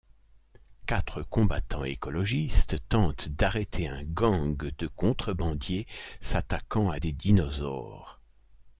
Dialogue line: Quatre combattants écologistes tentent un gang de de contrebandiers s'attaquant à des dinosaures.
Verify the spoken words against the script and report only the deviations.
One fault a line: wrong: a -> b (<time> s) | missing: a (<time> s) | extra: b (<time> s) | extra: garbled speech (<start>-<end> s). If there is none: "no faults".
extra: d'arrêter (3.3 s)
missing: de (4.9 s)